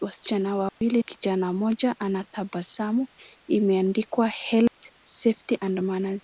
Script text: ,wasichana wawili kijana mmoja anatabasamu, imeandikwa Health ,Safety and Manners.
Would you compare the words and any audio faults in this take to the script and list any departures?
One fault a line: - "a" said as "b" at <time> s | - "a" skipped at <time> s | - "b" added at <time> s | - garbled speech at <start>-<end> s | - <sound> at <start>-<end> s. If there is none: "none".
- dropout at 0.7-0.8 s
- dropout at 4.7-4.8 s